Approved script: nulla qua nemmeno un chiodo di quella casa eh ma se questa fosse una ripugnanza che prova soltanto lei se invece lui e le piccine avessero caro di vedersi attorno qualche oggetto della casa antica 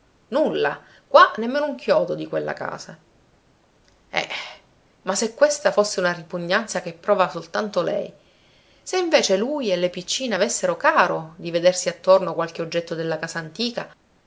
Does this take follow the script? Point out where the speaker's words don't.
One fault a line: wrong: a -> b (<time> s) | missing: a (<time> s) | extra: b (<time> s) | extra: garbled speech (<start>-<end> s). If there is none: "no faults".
no faults